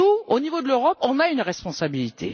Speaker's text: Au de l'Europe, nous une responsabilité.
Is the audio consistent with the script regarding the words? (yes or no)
no